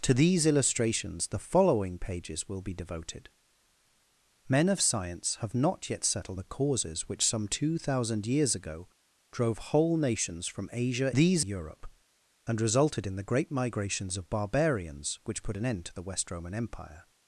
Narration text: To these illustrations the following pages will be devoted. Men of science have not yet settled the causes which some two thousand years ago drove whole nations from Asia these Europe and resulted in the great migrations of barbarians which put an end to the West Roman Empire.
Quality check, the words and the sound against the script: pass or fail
pass